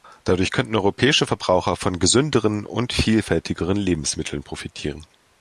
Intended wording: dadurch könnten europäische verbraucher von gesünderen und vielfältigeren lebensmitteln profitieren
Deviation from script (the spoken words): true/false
false